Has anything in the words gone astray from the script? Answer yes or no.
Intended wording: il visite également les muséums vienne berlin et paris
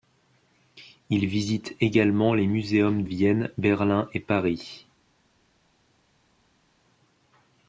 no